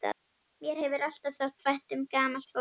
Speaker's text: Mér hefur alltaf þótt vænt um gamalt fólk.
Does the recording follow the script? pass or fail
pass